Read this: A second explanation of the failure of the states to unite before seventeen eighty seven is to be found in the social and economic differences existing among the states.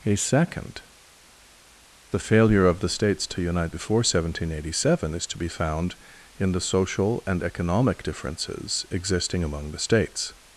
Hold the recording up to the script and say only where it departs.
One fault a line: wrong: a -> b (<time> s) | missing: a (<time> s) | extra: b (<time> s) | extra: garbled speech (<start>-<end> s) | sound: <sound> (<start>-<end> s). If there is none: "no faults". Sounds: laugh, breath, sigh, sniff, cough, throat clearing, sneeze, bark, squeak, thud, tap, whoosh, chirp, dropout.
missing: explanation of (0.8 s)